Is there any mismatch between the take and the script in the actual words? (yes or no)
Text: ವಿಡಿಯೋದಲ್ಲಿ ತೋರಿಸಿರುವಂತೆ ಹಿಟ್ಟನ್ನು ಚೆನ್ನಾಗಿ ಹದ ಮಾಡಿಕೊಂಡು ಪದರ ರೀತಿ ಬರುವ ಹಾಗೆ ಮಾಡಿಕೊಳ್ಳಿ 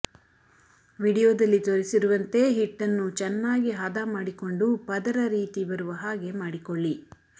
no